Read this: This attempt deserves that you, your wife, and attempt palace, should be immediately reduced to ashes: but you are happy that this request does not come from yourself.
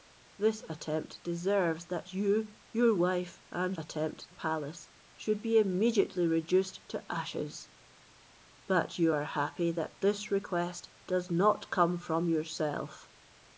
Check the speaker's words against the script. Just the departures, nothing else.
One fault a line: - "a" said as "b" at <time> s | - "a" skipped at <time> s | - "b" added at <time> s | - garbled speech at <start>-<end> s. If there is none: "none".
none